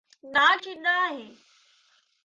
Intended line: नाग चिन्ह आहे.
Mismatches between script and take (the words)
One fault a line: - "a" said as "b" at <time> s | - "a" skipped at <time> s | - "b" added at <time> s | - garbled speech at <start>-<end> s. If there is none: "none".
none